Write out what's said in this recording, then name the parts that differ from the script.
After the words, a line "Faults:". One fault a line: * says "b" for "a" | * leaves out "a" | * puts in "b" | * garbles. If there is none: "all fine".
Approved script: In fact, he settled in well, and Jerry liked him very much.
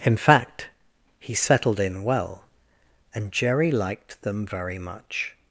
In fact, he settled in well, and Jerry liked them very much.
Faults:
* says "them" for "him"